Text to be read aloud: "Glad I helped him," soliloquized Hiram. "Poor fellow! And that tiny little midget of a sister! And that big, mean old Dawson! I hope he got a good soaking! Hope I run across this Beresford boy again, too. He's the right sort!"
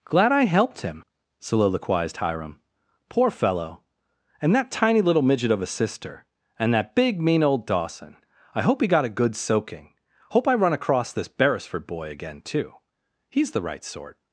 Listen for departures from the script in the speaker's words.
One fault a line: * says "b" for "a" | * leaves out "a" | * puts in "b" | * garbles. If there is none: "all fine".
all fine